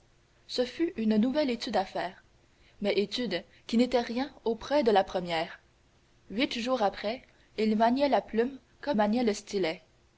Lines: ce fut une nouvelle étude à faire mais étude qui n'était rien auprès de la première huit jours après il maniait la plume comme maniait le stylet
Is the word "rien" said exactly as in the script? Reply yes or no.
yes